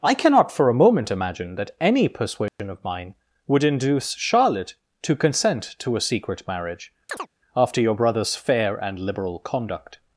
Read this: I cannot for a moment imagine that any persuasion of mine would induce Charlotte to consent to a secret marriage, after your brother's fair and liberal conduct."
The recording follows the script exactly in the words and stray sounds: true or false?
false